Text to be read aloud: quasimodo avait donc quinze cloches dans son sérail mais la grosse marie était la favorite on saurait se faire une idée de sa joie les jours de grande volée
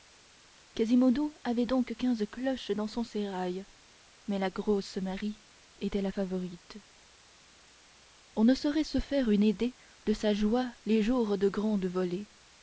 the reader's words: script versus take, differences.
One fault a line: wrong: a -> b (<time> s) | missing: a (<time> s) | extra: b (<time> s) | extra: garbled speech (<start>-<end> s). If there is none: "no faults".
extra: ne (8.4 s)